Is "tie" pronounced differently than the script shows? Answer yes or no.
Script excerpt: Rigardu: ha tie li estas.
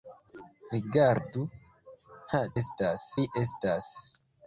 yes